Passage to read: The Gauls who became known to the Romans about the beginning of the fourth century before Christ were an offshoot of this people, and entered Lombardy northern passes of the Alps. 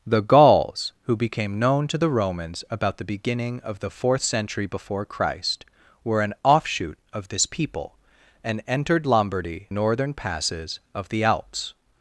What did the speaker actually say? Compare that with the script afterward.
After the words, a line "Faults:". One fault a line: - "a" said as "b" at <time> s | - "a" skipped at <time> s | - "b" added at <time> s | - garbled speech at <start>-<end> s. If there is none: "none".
The Gauls who became known to the Romans about the beginning of the fourth century before Christ were an offshoot of this people, and entered Lombardy northern passes of the Alps.
Faults:
none